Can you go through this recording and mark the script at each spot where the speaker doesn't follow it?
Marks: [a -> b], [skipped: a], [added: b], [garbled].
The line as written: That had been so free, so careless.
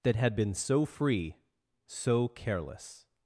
That had been so free, so careless.